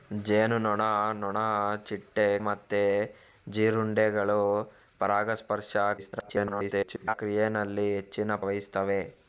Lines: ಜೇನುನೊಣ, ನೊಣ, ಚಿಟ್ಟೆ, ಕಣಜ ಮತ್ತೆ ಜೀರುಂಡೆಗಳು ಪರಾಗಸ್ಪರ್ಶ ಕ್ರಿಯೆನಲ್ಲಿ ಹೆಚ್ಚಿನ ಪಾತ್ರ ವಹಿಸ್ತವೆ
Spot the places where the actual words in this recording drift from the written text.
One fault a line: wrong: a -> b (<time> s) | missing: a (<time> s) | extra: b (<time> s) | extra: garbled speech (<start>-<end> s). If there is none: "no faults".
missing: ಕಣಜ (2.4 s)
extra: garbled speech (6.0-7.1 s)
missing: ಪಾತ್ರ (8.3 s)